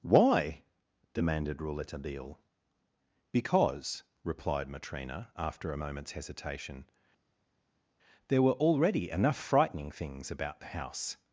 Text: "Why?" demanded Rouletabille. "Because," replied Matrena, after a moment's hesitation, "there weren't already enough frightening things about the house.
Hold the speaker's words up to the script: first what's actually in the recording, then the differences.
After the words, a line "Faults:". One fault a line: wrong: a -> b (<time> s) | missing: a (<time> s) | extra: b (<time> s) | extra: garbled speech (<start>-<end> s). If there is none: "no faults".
"Why?" demanded Rouletabille. "Because," replied Matrena, after a moment's hesitation, "there were already enough frightening things about the house.
Faults:
wrong: weren't -> were (8.4 s)